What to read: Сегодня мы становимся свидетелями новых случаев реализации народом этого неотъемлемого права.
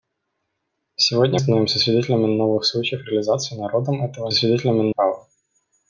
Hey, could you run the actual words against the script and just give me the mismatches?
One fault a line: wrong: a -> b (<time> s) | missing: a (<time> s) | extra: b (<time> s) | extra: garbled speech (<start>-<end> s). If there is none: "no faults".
missing: мы (1.4 s)
wrong: неотъемлемого -> свидетелями (4.3 s)